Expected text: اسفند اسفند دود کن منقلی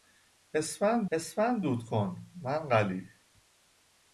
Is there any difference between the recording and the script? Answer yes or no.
no